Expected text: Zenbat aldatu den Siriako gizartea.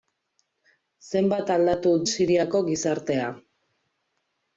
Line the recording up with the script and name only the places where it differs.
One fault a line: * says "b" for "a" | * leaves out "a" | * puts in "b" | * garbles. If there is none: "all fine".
* leaves out "den"